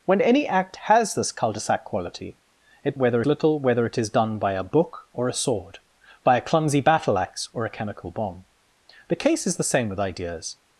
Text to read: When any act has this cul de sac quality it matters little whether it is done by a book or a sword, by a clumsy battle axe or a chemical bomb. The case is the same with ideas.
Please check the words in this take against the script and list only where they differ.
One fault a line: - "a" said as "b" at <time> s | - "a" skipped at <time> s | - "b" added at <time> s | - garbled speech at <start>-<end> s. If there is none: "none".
- "matters" said as "whether" at 2.9 s